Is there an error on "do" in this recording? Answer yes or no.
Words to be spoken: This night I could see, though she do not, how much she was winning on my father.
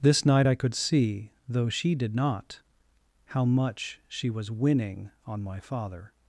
yes